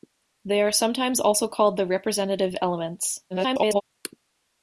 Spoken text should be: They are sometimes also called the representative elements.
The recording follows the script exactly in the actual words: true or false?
false